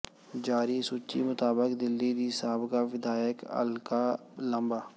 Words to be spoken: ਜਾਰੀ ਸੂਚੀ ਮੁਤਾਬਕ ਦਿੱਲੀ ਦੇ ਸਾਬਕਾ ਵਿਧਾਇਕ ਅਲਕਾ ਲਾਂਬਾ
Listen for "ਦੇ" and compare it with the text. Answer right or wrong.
wrong